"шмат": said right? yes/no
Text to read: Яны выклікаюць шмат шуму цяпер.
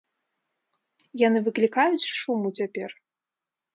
no